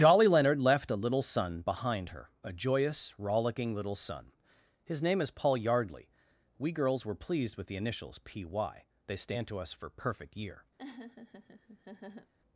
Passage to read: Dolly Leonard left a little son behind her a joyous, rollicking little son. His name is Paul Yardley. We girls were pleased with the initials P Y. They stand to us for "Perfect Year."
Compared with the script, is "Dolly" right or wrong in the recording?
wrong